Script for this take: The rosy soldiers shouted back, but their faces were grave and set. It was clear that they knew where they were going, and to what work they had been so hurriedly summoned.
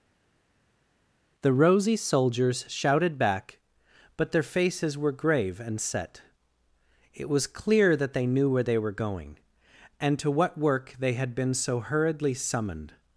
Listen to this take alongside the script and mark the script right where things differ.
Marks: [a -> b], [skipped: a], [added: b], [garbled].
The rosy soldiers shouted back, but their faces were grave and set. It was clear that they knew where they were going, and to what work they had been so hurriedly summoned.